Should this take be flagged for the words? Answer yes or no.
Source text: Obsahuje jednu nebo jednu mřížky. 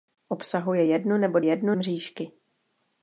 no